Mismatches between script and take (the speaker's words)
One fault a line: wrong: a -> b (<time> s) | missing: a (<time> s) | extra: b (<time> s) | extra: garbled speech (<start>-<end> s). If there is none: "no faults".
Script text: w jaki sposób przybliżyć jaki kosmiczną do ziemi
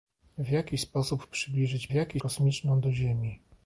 no faults